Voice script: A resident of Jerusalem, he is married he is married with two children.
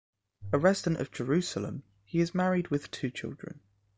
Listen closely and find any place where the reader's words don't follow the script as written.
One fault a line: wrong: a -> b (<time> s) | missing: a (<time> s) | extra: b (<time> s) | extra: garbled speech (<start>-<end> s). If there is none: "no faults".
missing: he is married (2.7 s)